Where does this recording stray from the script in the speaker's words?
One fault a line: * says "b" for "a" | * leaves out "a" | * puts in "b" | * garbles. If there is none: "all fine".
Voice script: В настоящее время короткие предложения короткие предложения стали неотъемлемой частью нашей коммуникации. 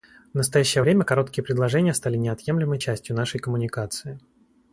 * leaves out "короткие предложения"